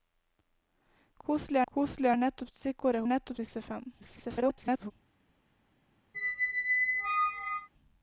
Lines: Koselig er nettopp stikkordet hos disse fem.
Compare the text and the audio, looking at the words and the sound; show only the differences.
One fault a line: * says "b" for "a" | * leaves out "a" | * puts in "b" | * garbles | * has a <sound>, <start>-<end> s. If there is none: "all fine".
* puts in "koselig"
* says "nettopp" for "hos"
* garbles
* has a squeak, 6.1-7.7 s